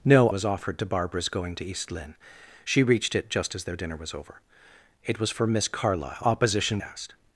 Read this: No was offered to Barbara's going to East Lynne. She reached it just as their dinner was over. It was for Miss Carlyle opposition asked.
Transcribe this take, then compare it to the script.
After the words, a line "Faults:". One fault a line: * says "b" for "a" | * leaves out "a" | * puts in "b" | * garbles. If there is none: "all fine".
No was offered to Barbara's going to East Lynne. She reached it just as their dinner was over. It was for Miss Carlyle opposition asked.
Faults:
all fine